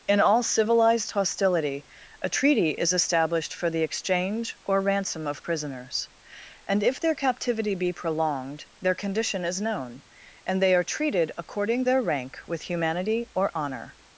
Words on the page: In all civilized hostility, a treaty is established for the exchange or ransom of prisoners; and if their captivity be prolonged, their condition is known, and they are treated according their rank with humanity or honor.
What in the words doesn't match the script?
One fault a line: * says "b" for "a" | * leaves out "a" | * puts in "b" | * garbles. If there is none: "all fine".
all fine